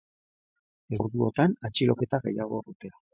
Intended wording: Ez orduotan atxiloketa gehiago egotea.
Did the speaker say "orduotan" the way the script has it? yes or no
yes